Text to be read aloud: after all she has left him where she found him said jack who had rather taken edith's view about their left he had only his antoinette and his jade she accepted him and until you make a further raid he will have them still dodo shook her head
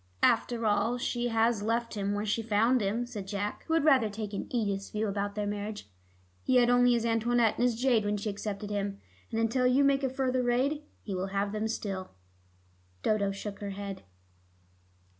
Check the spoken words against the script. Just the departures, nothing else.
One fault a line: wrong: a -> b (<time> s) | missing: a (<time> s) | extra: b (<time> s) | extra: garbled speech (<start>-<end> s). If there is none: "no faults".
wrong: left -> marriage (5.5 s)
extra: when (8.0 s)